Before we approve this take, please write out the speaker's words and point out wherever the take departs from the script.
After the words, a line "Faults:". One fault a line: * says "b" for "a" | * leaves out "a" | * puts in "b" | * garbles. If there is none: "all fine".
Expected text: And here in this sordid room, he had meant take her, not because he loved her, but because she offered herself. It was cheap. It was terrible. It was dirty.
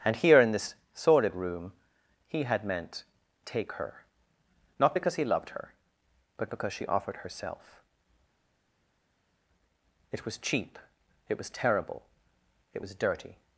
And here in this sordid room, he had meant take her, not because he loved her, but because she offered herself. It was cheap. It was terrible. It was dirty.
Faults:
all fine